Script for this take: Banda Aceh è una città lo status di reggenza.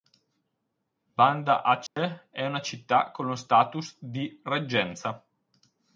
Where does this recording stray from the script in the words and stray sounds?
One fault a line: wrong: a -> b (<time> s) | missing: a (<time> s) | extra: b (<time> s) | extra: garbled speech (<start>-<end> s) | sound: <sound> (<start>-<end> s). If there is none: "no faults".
sound: dropout (1.9-2.0 s)
extra: con (3.1 s)